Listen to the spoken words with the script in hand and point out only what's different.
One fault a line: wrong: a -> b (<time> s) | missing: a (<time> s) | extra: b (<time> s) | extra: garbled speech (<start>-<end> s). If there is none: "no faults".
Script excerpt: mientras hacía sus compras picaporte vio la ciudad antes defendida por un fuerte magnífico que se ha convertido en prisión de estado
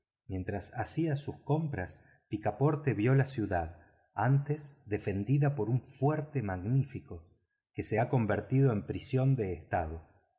no faults